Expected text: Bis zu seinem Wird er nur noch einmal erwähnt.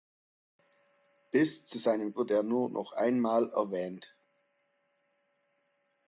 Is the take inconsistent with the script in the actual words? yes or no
no